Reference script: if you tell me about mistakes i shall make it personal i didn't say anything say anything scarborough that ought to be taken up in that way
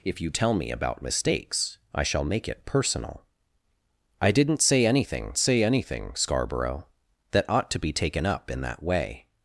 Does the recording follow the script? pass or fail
pass